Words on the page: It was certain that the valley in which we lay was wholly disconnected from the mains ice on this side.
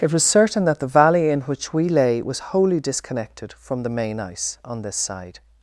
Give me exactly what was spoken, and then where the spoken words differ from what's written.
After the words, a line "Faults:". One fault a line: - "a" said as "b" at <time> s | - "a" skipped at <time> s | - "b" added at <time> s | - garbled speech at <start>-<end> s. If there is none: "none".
It was certain that the valley in which we lay was wholly disconnected from the main ice on this side.
Faults:
- "mains" said as "main" at 3.9 s